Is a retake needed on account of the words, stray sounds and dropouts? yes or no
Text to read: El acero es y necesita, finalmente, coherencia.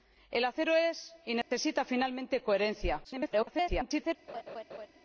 yes